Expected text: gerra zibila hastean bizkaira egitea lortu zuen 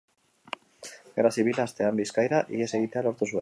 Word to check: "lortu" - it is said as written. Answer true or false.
true